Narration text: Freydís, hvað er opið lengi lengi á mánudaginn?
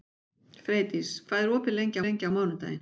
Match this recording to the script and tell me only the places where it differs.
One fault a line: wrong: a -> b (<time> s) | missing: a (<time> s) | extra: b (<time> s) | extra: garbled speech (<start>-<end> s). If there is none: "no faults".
no faults